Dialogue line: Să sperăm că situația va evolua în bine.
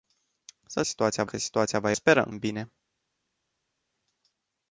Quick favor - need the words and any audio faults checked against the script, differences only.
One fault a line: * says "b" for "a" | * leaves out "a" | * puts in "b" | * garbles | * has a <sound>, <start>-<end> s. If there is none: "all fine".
* says "situația" for "sperăm"
* says "sperăm" for "evolua"